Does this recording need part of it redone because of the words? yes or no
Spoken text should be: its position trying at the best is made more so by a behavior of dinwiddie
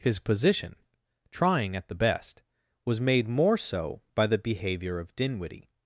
yes